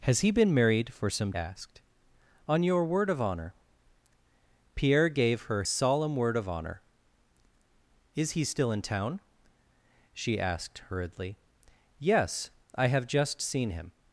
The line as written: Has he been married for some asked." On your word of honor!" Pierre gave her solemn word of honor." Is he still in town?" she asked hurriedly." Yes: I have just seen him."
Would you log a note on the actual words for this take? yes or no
no